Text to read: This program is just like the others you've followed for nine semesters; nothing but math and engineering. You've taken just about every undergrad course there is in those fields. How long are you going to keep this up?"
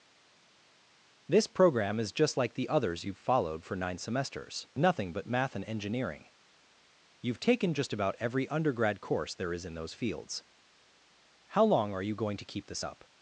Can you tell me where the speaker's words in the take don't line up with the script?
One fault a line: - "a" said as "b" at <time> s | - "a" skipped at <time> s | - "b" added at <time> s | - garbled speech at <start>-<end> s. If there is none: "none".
none